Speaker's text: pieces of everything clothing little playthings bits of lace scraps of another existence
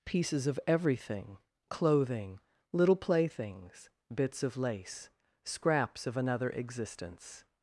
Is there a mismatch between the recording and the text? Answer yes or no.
no